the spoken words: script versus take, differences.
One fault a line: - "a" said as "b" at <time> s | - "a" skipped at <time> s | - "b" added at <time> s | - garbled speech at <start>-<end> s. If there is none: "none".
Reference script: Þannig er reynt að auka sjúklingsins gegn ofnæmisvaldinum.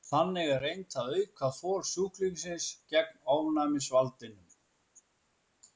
- "þol" added at 1.6 s